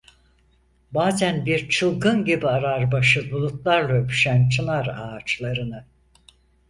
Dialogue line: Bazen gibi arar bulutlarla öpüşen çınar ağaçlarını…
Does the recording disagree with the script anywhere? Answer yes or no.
yes